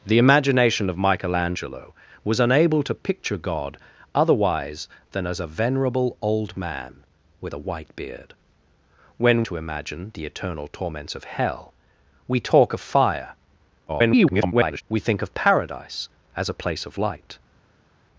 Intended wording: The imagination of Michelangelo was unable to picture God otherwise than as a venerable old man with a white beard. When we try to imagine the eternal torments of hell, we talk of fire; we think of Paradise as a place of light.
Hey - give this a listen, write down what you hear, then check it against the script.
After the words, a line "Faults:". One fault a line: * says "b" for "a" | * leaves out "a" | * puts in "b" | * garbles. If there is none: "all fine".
The imagination of Michelangelo was unable to picture God otherwise than as a venerable old man with a white beard. When to imagine the eternal torments of hell, we talk of fire; [garbled] we think of Paradise as a place of light.
Faults:
* leaves out "we try"
* garbles